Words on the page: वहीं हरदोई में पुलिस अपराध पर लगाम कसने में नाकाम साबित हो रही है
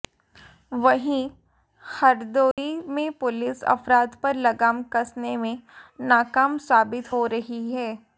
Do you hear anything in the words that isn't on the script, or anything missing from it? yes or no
no